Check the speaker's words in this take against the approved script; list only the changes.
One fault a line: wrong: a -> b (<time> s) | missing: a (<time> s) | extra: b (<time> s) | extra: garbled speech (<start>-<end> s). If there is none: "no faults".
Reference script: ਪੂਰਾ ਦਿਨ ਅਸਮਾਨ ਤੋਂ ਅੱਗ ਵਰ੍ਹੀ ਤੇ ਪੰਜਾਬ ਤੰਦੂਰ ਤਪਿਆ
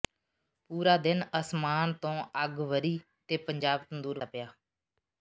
no faults